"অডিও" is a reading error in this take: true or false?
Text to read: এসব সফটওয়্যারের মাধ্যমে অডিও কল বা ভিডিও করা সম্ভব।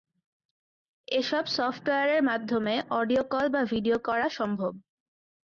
false